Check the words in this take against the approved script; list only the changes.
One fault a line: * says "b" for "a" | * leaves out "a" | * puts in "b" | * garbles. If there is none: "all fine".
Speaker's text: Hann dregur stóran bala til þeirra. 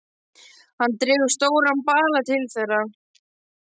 all fine